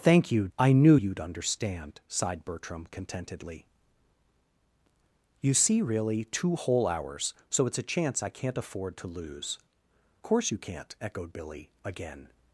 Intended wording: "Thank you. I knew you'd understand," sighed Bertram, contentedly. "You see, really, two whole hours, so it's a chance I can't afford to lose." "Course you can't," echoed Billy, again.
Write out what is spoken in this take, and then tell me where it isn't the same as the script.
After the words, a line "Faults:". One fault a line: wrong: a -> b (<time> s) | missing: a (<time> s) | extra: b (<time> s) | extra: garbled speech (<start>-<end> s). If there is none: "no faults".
"Thank you. I knew you'd understand," sighed Bertram, contentedly. "You see, really, two whole hours, so it's a chance I can't afford to lose." "Course you can't," echoed Billy, again.
Faults:
no faults